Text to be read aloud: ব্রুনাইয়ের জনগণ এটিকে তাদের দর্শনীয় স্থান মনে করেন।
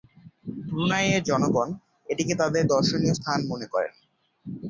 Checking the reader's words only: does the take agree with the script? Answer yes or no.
yes